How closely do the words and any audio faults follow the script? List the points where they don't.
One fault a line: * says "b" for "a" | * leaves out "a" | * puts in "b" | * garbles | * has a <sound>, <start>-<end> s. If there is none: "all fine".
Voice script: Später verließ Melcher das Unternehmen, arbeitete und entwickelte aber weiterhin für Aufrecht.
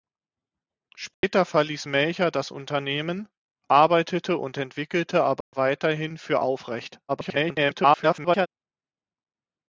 * has a dropout, 1.1-1.2 s
* has a dropout, 5.4-5.5 s
* garbles